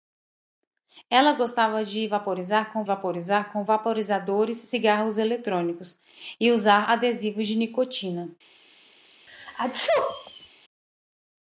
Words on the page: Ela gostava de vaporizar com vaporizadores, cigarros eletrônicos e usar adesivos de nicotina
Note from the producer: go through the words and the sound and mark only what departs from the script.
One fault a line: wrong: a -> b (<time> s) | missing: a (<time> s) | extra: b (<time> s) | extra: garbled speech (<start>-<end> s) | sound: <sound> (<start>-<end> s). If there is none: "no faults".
extra: vaporizar com (2.8 s)
sound: sneeze (9.3-10.5 s)